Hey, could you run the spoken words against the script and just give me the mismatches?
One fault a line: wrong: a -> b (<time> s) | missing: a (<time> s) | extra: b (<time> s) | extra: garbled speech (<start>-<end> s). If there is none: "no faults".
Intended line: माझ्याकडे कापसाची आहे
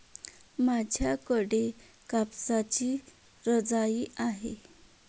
extra: रजाई (3.5 s)